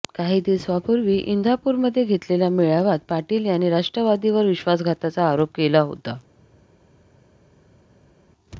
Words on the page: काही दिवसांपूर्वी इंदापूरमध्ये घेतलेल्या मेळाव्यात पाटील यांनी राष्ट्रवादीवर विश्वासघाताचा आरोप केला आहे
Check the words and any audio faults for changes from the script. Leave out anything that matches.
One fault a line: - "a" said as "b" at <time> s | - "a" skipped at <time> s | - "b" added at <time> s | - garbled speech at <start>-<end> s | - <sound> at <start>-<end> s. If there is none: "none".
- "आहे" said as "होता" at 5.8 s